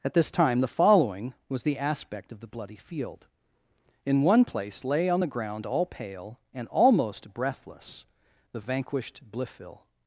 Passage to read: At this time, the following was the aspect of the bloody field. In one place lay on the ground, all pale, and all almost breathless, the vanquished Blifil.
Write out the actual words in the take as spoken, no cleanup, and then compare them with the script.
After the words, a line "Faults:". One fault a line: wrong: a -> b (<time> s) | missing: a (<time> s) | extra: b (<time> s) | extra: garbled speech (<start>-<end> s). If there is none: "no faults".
At this time, the following was the aspect of the bloody field. In one place lay on the ground, all pale, and almost breathless, the vanquished Blifil.
Faults:
missing: all (6.7 s)